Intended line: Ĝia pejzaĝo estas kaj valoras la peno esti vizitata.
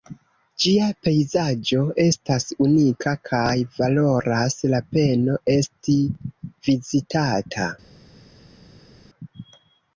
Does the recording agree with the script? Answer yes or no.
no